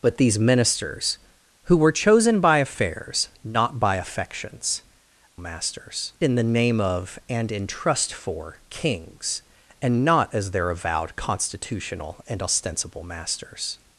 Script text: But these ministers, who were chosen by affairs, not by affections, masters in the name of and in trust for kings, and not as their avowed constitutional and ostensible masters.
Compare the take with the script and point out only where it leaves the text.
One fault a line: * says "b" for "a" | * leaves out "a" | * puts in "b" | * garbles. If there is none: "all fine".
all fine